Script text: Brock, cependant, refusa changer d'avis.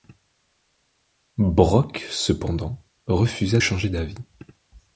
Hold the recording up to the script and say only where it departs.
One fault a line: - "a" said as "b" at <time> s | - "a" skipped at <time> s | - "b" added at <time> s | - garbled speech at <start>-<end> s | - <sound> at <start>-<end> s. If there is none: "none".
none